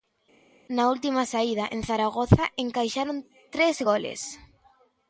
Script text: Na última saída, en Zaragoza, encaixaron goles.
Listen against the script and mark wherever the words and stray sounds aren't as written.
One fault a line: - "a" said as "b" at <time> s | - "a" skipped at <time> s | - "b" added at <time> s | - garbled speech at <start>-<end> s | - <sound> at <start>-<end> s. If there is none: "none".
- "tres" added at 3.5 s